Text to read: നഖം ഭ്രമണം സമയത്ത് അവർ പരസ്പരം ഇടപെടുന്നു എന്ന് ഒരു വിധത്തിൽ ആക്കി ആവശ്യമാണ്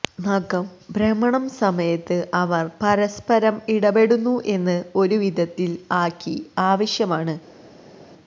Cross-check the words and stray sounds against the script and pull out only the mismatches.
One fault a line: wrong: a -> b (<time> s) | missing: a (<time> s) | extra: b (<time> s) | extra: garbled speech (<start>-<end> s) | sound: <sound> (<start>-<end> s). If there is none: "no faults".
no faults